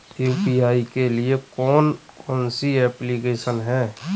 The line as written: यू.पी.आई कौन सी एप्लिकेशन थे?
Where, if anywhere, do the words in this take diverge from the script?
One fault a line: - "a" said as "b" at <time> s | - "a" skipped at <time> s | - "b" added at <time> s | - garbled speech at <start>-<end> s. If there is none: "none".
- "के लिए" added at 0.9 s
- "कौन" added at 2.2 s
- "थे" said as "हैं" at 3.6 s